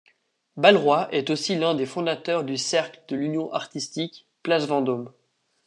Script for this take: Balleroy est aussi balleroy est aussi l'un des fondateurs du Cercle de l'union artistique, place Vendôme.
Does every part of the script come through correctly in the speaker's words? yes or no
no